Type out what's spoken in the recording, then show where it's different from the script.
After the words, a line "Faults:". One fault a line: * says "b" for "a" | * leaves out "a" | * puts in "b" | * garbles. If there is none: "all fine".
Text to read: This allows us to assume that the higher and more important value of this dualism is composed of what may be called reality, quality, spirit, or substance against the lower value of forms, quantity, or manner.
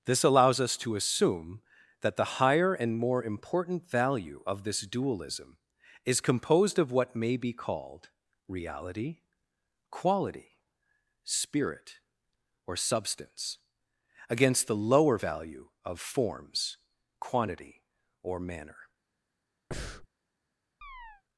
This allows us to assume that the higher and more important value of this dualism is composed of what may be called reality, quality, spirit, or substance against the lower value of forms, quantity, or manner.
Faults:
all fine